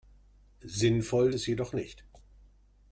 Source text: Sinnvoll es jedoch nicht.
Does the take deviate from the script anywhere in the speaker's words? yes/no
no